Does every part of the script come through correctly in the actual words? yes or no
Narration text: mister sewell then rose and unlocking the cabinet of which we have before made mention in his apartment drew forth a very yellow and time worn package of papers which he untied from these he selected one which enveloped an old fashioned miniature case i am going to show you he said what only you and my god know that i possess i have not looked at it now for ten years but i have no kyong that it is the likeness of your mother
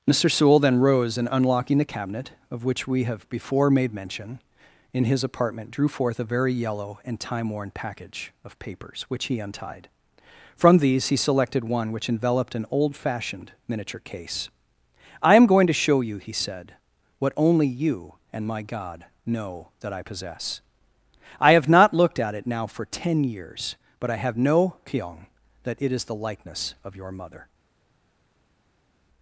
yes